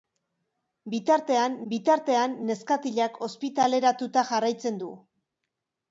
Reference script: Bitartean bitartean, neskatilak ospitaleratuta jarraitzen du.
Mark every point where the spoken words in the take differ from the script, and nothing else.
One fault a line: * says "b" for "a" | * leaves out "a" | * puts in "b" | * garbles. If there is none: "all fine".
all fine